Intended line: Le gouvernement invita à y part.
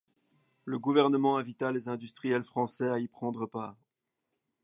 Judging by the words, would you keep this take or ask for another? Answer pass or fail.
fail